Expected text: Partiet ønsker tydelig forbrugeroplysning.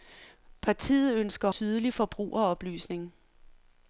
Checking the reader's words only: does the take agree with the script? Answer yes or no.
yes